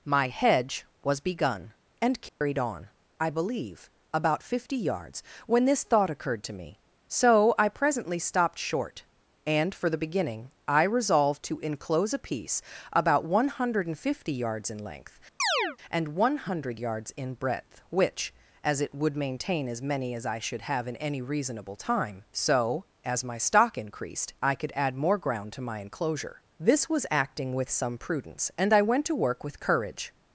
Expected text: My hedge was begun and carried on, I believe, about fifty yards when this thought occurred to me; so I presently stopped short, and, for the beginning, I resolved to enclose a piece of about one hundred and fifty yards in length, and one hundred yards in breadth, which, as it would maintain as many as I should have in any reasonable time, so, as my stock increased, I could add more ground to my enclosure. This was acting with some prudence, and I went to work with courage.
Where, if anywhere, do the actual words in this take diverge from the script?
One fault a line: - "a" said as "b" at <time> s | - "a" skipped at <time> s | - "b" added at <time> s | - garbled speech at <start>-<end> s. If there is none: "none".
- "of" skipped at 12.6 s